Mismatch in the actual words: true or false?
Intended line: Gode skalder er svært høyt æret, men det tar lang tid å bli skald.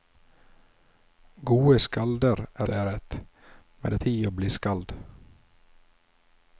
true